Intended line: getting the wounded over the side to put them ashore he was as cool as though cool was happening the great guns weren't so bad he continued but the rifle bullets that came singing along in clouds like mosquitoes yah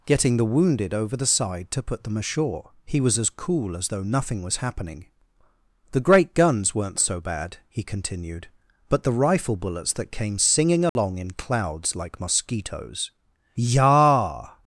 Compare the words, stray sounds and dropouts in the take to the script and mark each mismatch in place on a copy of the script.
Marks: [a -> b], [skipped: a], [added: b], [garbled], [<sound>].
getting the wounded over the side to put them ashore he was as cool as though [cool -> nothing] was happening the great guns weren't so bad he continued but the rifle bullets that came singing along [dropout] in clouds like mosquitoes yah